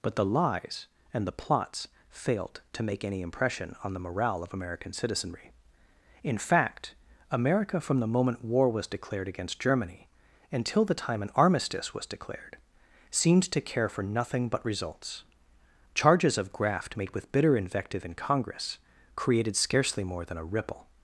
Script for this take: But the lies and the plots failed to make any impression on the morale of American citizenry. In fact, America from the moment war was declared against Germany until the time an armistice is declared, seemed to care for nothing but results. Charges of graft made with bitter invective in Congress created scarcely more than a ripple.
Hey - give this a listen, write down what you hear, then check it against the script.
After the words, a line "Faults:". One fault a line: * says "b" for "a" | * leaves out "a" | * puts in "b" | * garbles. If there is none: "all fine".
But the lies and the plots failed to make any impression on the morale of American citizenry. In fact, America from the moment war was declared against Germany until the time an armistice was declared, seemed to care for nothing but results. Charges of graft made with bitter invective in Congress created scarcely more than a ripple.
Faults:
* says "was" for "is"